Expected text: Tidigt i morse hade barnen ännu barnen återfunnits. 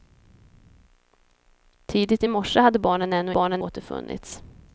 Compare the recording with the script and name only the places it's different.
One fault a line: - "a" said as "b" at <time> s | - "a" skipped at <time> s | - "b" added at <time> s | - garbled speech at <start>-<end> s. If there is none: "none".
none